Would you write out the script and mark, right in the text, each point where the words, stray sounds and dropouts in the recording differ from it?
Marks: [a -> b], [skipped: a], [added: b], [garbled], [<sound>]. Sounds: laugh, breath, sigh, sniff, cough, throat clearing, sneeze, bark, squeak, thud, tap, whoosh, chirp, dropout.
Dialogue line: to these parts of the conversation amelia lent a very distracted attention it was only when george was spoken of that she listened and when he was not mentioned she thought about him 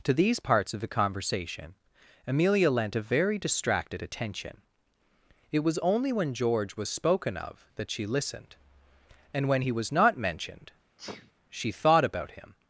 to these parts of the conversation amelia lent a very distracted attention it was only when george was spoken of that she listened and when he was not mentioned [sneeze] she thought about him